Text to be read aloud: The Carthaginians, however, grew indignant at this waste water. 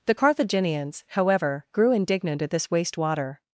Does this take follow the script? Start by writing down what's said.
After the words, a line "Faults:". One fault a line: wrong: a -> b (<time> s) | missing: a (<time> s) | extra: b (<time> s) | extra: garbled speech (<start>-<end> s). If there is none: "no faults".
The Carthaginians, however, grew indignant at this waste water.
Faults:
no faults